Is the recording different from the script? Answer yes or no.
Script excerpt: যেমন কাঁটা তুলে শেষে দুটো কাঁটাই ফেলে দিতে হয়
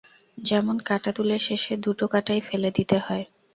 no